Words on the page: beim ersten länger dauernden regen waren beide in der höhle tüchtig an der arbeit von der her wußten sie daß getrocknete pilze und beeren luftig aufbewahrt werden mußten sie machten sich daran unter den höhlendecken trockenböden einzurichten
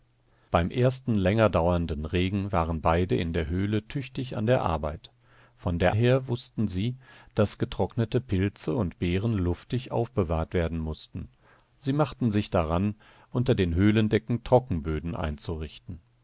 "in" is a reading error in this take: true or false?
false